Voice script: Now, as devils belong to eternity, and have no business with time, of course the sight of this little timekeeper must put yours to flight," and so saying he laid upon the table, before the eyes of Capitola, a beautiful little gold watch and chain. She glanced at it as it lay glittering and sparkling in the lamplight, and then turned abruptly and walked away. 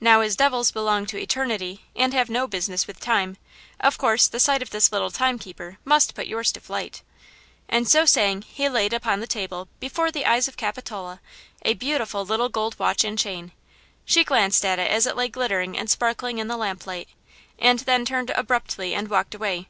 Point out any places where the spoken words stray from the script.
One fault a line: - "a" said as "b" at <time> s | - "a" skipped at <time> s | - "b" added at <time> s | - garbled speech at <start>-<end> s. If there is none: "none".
none